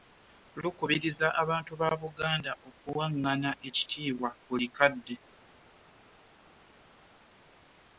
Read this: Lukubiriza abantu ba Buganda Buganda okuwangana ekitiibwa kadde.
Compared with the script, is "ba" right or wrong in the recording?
right